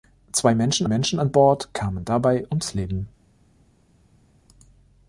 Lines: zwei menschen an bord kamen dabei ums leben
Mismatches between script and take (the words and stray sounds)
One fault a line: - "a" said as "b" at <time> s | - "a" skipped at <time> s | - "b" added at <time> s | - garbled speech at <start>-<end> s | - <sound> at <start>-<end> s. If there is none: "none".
- "menschen" added at 0.9 s